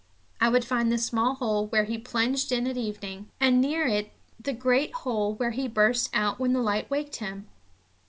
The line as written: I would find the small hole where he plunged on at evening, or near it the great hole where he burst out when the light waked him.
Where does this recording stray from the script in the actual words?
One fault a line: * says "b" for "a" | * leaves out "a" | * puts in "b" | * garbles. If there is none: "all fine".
* says "in" for "on"
* says "and" for "or"